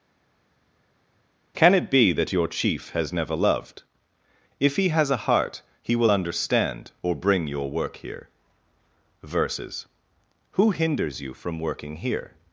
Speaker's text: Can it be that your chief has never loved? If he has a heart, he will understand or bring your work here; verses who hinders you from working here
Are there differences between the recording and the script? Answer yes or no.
no